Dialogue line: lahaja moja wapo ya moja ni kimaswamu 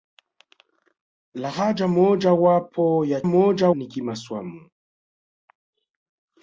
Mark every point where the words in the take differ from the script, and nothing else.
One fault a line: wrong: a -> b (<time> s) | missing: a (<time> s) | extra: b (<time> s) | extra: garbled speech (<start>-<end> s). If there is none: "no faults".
no faults